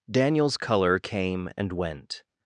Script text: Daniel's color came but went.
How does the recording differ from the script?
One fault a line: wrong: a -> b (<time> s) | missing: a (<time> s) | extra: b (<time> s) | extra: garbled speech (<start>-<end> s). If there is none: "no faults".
wrong: but -> and (1.6 s)